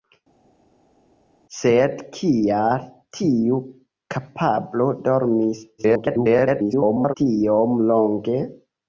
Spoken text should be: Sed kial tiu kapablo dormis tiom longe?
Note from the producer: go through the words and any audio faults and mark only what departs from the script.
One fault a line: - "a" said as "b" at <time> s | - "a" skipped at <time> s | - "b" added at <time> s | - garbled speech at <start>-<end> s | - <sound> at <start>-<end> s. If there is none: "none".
- garbled speech at 5.8-7.1 s